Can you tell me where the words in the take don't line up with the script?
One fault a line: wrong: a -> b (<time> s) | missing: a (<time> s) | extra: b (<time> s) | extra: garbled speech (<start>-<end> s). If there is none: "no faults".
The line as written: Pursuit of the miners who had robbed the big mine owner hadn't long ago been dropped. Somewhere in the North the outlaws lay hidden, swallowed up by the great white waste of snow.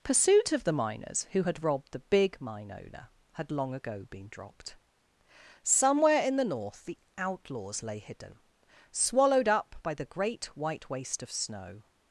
wrong: hadn't -> had (3.3 s)